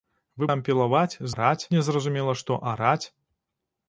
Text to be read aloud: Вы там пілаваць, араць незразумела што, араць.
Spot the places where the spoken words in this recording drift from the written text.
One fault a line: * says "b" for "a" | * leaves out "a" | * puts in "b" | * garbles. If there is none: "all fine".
all fine